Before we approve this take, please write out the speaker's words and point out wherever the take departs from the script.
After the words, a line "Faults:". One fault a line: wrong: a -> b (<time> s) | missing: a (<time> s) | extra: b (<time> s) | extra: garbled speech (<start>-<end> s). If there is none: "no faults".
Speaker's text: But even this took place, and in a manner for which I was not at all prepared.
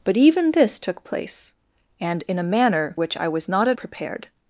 But even this took place, and in a manner which I was not at prepared.
Faults:
missing: for (3.0 s)
missing: all (3.8 s)